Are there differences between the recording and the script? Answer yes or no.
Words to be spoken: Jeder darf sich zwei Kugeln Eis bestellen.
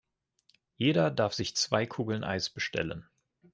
no